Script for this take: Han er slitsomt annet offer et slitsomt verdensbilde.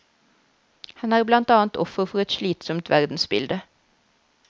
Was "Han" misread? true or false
false